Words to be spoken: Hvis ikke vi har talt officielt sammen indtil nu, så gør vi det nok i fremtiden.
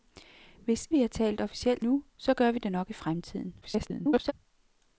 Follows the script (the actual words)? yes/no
no